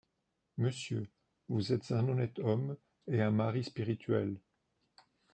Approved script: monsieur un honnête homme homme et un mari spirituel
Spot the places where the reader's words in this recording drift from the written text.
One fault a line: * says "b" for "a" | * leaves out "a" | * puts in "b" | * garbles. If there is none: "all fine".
* puts in "vous êtes"
* leaves out "homme"